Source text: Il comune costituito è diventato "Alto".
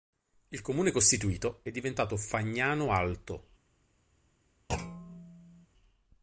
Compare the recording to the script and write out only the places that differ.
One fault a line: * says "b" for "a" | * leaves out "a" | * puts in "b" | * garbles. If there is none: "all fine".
* puts in "Fagnano"